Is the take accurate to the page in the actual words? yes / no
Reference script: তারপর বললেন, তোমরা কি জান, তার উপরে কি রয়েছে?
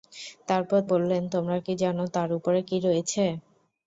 yes